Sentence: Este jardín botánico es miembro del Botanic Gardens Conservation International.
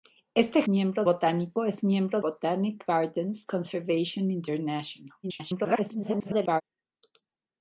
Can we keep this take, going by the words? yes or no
no